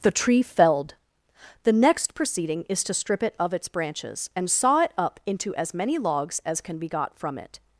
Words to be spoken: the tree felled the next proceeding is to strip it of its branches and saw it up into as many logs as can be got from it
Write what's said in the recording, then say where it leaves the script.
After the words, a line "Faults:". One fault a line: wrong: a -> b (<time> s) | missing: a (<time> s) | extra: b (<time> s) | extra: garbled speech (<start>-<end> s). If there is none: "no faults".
the tree felled the next proceeding is to strip it of its branches and saw it up into as many logs as can be got from it
Faults:
no faults